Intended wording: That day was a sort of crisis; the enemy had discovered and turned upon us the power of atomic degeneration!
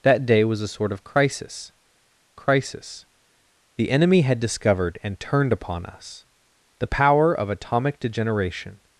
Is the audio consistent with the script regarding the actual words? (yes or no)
no